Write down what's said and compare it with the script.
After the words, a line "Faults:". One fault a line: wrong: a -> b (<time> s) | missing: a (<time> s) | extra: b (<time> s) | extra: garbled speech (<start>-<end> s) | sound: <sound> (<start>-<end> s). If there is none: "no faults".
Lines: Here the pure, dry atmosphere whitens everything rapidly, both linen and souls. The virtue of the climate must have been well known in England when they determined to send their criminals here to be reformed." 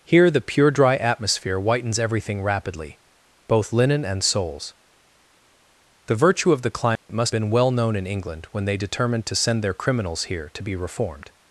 Here the pure, dry atmosphere whitens everything rapidly, both linen and souls. The virtue of the climate must been well known in England when they determined to send their criminals here to be reformed."
Faults:
sound: dropout (7.0-7.1 s)
missing: have (7.3 s)